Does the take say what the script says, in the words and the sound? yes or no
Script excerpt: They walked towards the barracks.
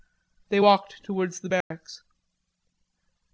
no